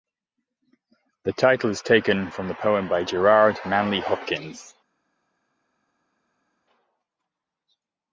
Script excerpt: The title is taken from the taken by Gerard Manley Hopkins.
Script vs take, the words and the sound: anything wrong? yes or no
yes